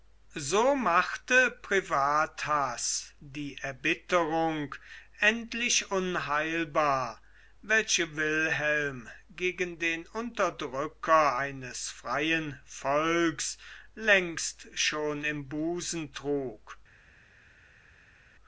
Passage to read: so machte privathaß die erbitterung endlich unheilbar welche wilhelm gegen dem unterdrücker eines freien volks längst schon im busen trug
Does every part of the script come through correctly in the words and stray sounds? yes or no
no